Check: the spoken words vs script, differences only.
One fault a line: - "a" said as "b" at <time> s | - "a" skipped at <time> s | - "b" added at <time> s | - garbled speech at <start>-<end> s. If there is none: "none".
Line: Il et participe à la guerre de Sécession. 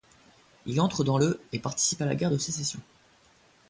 - "entre dans le" added at 0.8 s